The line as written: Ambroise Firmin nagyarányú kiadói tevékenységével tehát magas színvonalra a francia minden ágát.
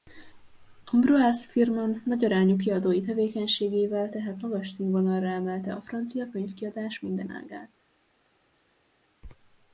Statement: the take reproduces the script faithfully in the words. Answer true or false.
false